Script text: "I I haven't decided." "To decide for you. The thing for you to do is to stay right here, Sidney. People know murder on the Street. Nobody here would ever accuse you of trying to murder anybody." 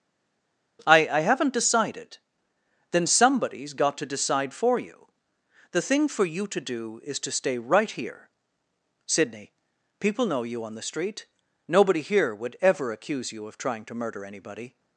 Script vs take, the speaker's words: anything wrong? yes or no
yes